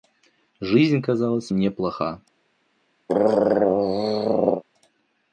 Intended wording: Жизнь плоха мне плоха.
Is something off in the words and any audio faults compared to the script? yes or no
yes